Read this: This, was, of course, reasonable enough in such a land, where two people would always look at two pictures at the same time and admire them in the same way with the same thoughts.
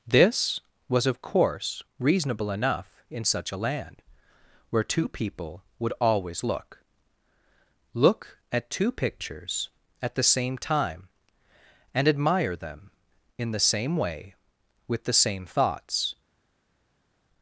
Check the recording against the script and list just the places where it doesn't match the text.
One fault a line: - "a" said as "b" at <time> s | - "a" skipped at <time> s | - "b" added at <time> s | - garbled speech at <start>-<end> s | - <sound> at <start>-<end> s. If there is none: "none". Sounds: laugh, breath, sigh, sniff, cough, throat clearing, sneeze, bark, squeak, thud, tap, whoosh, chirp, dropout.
- "look" added at 7.9 s